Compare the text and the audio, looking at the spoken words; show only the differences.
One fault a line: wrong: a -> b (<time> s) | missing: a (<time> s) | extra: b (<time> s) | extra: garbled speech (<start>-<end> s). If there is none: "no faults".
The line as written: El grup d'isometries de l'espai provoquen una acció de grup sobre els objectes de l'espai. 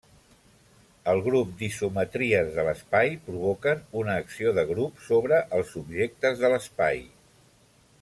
no faults